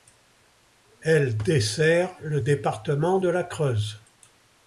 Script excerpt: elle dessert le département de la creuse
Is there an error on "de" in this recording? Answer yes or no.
no